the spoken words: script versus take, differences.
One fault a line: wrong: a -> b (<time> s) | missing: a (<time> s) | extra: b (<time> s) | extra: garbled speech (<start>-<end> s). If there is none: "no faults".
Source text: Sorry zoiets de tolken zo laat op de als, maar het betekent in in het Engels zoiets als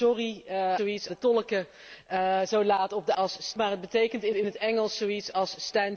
no faults